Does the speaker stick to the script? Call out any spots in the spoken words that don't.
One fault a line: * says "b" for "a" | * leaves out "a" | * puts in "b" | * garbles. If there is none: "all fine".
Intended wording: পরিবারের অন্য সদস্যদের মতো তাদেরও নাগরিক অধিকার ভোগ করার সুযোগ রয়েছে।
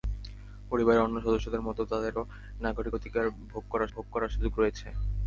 * puts in "ভোগ করার"